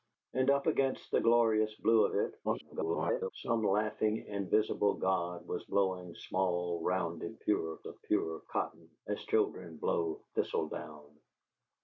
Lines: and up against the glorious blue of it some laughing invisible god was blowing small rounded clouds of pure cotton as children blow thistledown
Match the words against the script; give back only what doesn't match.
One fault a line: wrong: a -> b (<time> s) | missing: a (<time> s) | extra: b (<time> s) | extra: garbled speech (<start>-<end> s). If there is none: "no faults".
extra: garbled speech (2.4-3.3 s)
wrong: clouds -> pure (7.4 s)